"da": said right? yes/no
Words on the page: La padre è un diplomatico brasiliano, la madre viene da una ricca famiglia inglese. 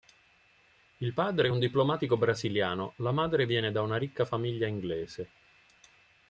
yes